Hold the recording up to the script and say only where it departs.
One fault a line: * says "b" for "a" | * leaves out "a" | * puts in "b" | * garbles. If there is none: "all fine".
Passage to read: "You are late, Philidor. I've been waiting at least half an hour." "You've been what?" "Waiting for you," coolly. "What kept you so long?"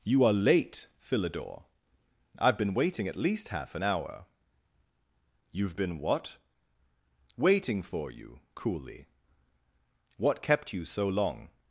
all fine